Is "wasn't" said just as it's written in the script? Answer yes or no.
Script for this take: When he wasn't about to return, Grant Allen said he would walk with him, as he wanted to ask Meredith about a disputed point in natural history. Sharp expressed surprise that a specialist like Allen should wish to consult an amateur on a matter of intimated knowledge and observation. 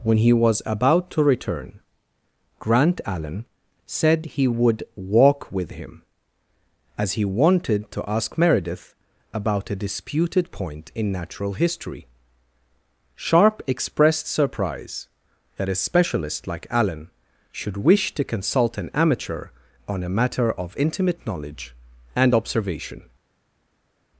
no